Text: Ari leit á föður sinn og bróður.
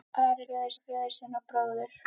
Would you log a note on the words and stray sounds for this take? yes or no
yes